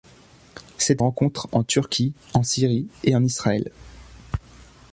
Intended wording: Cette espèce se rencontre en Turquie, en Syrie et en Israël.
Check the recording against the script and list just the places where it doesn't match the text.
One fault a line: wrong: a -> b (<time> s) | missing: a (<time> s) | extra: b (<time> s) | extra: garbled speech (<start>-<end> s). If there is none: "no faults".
missing: espèce se (1.0 s)